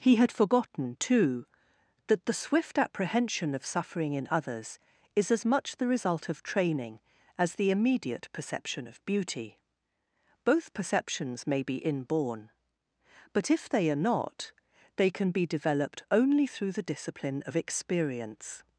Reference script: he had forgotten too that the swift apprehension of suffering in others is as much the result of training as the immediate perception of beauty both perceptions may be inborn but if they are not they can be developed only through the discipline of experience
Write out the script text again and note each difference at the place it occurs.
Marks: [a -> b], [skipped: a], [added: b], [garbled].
he had forgotten too that the swift apprehension of suffering in others is as much the result of training as the immediate perception of beauty both perceptions may be inborn but if they are not they can be developed only through the discipline of experience